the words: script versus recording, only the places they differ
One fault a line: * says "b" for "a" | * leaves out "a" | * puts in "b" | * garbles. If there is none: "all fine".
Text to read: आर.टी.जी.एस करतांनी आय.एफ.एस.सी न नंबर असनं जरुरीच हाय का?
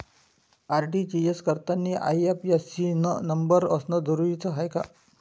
all fine